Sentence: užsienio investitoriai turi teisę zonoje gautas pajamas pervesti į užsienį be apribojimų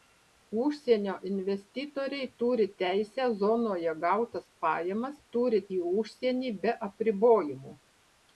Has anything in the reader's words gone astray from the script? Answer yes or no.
yes